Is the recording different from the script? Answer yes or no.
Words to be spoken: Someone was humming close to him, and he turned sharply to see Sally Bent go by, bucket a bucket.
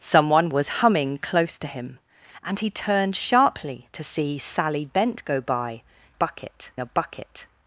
no